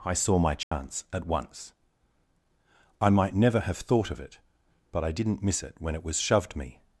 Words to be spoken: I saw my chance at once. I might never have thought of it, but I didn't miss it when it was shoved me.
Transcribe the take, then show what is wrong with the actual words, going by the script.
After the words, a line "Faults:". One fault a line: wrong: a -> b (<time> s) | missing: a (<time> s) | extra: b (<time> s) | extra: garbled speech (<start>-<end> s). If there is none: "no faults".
I saw my chance at once. I might never have thought of it, but I didn't miss it when it was shoved me.
Faults:
no faults